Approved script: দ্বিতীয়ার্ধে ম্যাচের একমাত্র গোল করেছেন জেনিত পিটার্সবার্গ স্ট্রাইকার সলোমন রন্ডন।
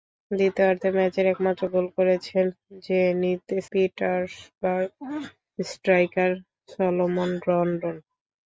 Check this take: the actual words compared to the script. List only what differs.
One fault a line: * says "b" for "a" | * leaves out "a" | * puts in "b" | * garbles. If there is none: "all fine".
all fine